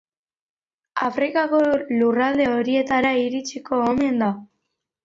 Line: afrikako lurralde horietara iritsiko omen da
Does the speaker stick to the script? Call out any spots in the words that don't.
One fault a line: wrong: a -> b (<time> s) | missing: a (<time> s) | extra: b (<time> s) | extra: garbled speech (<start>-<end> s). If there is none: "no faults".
no faults